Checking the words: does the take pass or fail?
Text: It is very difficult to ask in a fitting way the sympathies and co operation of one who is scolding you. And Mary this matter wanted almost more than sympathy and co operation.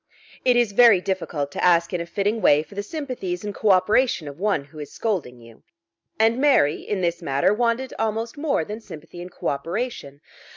fail